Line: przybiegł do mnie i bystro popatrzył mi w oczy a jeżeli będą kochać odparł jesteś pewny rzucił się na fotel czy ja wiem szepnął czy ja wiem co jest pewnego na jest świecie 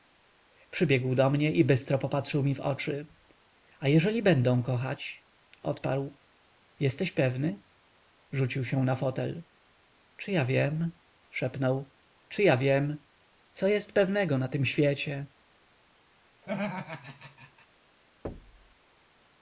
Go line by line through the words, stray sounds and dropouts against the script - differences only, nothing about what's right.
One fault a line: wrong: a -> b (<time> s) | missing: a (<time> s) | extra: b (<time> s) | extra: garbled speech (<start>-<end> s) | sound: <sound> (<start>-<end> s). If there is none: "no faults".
wrong: jest -> tym (14.5 s)
sound: laugh (16.4-17.7 s)
sound: thud (18.2-18.7 s)